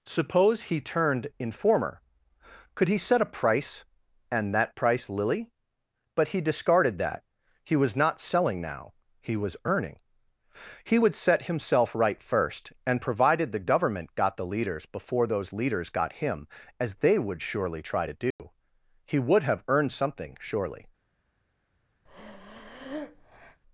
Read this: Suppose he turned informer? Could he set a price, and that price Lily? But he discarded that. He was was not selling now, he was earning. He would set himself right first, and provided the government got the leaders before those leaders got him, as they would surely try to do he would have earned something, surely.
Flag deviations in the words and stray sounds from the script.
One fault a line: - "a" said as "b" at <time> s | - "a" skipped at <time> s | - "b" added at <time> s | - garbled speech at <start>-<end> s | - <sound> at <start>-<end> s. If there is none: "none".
- "was" skipped at 8.0 s
- dropout at 18.3-18.4 s
- breath at 22.1-23.6 s